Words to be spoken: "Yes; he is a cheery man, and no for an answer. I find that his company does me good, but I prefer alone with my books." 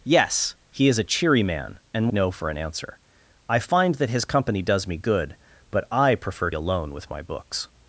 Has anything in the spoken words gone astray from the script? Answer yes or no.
no